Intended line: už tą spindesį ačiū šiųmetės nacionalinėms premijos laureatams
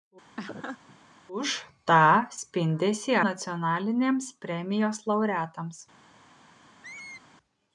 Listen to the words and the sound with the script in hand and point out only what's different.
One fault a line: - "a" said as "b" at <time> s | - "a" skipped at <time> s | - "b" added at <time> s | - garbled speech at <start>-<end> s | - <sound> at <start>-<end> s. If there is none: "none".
- laugh at 0.4-1.0 s
- "ačiū šiųmetės" skipped at 3.2 s
- squeak at 6.8-7.2 s